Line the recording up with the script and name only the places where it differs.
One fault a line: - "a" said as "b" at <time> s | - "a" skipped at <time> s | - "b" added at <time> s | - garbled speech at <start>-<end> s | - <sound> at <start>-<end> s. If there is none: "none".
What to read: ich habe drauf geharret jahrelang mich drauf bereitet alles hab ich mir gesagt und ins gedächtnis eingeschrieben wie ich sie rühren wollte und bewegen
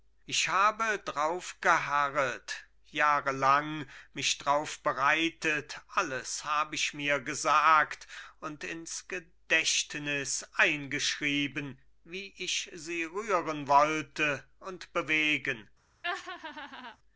- laugh at 16.0-17.0 s